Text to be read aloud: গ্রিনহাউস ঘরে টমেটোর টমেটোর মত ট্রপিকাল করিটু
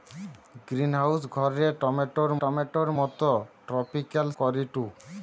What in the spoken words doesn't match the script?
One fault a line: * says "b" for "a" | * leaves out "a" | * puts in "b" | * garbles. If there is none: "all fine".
all fine